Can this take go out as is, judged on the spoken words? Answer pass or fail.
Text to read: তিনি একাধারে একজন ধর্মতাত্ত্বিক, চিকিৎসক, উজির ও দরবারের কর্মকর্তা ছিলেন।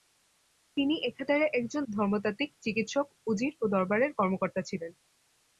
pass